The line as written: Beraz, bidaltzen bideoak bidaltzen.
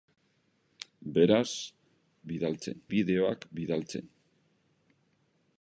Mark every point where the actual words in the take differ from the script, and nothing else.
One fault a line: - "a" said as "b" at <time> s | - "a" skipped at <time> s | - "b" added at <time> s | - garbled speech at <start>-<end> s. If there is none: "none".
none